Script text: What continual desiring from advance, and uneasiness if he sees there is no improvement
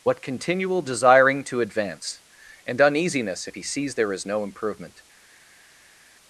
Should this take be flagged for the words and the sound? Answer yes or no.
yes